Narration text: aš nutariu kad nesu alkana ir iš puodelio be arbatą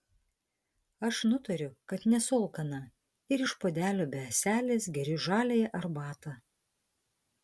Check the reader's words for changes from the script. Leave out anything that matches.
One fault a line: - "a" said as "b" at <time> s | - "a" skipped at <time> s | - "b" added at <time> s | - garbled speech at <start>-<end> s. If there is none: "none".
- "ąselės geriu žaliąją" added at 4.3 s